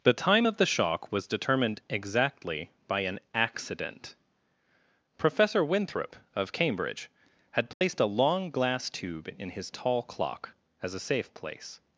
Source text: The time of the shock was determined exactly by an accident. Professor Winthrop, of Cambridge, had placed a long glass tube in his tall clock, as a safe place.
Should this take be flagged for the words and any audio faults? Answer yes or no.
yes